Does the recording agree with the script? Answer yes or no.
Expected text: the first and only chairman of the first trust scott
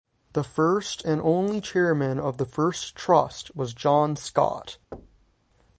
no